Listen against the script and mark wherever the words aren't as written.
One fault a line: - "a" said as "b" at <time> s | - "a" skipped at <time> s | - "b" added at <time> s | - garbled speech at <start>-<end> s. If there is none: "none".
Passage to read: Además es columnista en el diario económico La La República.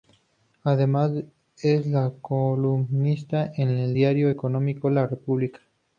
- "La" skipped at 5.1 s